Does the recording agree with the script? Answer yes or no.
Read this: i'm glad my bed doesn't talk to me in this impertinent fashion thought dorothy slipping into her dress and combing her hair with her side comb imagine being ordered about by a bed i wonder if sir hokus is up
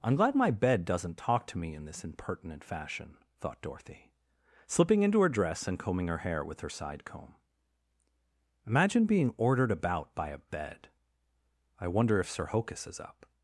yes